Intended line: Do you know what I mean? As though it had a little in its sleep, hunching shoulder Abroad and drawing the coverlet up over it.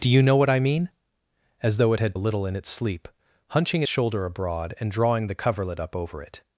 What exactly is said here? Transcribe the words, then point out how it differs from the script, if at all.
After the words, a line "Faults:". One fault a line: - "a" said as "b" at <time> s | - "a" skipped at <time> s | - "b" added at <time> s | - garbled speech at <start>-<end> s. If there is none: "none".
Do you know what I mean? As though it had a little in its sleep, hunching shoulder Abroad and drawing the coverlet up over it.
Faults:
none